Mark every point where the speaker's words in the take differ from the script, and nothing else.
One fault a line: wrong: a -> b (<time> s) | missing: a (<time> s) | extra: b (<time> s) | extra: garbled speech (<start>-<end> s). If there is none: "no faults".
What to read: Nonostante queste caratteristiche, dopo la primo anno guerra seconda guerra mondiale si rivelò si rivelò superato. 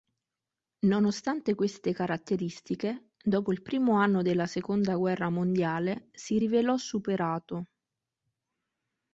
wrong: la -> il (3.5 s)
wrong: guerra -> della (4.2 s)
missing: si rivelò (6.8 s)